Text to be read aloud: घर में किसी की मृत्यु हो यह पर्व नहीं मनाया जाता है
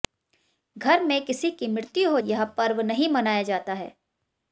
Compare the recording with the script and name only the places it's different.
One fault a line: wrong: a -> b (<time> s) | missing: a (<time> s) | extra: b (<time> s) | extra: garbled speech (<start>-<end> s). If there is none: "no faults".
no faults